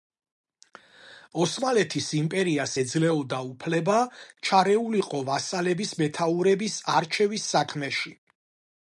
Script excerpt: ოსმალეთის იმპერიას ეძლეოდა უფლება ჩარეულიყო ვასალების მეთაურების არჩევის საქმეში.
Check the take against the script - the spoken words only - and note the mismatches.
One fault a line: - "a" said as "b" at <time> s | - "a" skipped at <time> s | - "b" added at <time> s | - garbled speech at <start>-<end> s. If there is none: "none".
none